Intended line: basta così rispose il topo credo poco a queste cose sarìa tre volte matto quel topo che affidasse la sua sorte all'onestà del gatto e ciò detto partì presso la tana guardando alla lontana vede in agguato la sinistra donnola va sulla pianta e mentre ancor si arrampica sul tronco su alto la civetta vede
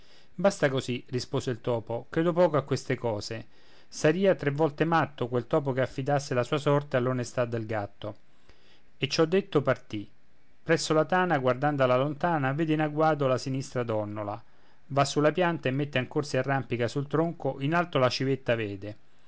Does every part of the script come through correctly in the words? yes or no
no